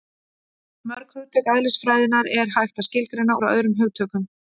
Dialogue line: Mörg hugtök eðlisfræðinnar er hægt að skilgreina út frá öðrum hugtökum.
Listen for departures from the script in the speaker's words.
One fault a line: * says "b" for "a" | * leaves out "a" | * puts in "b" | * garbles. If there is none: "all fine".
* leaves out "út"